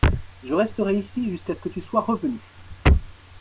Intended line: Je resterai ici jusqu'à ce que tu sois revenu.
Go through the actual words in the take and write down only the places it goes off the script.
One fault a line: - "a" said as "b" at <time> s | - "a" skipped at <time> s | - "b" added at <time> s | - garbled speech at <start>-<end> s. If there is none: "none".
none